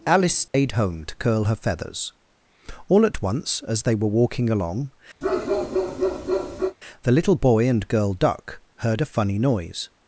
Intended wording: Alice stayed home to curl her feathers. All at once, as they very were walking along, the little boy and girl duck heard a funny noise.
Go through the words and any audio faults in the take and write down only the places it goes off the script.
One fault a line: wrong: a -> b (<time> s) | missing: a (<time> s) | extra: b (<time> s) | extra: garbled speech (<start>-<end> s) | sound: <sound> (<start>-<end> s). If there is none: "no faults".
sound: dropout (0.5-0.5 s)
missing: very (3.9 s)
sound: bark (5.2-6.8 s)